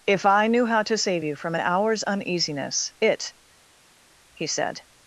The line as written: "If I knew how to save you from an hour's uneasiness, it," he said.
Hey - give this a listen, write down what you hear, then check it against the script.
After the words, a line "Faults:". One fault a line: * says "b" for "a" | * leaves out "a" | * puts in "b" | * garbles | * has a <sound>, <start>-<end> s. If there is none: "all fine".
"If I knew how to save you from an hour's uneasiness, it," he said.
Faults:
all fine